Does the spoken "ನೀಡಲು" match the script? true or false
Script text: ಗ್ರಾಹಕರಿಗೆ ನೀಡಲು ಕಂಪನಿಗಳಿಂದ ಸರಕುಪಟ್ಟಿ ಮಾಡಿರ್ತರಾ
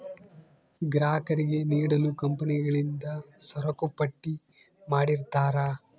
true